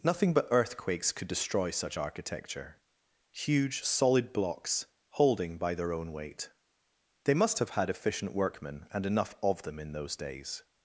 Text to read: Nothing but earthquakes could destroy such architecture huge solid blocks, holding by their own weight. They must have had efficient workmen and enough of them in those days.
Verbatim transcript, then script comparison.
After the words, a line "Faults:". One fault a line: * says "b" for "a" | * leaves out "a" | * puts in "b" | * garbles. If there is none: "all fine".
Nothing but earthquakes could destroy such architecture huge solid blocks, holding by their own weight. They must have had efficient workmen and enough of them in those days.
Faults:
all fine